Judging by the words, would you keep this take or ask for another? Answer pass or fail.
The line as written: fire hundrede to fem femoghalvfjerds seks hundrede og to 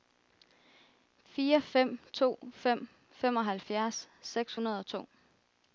fail